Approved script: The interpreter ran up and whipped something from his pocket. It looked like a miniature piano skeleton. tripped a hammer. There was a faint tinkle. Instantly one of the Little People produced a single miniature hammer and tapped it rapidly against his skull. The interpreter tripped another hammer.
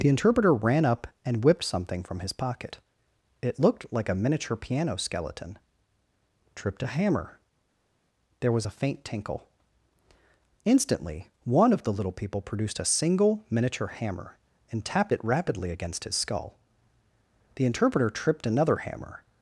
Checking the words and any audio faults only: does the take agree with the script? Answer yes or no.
yes